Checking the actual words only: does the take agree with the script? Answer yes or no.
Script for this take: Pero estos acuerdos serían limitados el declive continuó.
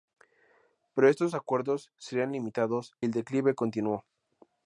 yes